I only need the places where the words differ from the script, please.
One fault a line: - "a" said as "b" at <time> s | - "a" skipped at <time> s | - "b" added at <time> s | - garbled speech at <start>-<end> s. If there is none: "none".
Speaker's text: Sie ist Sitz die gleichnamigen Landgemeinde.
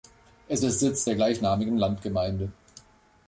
- "Sie" said as "Es" at 0.5 s
- "die" said as "der" at 1.0 s